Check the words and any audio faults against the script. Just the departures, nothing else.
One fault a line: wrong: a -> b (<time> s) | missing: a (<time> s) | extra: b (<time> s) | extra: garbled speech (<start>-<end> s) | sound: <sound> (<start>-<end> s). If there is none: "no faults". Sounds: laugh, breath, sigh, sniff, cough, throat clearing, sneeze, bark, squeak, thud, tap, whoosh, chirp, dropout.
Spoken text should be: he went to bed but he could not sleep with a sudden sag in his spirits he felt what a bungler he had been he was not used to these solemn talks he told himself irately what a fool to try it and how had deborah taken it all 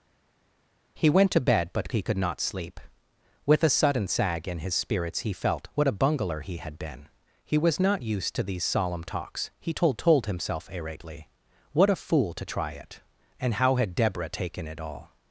extra: told (10.0 s)